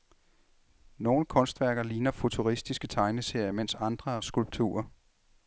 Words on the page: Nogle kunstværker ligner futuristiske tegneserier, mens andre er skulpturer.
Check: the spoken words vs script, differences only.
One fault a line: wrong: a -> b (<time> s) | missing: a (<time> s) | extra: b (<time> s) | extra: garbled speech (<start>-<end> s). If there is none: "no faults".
no faults